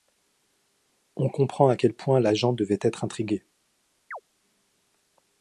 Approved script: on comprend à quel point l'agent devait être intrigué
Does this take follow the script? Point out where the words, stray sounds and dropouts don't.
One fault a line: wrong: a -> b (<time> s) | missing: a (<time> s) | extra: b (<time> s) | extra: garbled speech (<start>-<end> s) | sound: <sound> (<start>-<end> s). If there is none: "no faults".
sound: chirp (4.1-4.2 s)